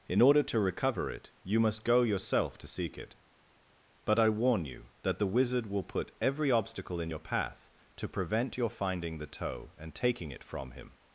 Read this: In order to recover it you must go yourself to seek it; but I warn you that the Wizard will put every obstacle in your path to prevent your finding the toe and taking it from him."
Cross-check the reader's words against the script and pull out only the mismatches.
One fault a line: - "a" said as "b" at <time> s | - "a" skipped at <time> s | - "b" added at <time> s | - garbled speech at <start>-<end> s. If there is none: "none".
none